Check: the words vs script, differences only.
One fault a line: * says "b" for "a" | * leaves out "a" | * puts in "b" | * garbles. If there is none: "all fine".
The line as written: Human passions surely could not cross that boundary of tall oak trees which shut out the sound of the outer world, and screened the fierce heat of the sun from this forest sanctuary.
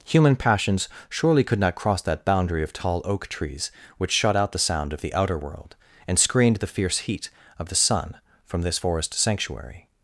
all fine